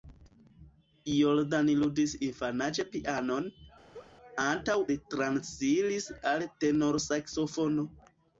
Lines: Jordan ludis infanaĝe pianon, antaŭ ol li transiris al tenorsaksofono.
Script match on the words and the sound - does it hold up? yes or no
no